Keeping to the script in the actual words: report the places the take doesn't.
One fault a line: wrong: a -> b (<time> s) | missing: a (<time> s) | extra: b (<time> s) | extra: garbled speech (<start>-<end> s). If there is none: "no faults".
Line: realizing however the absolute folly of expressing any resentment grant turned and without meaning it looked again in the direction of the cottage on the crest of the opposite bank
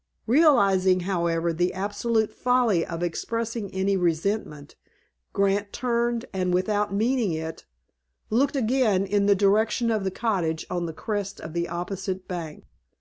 no faults